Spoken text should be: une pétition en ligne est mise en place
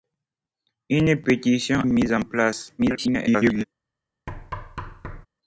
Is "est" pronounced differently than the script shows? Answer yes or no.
yes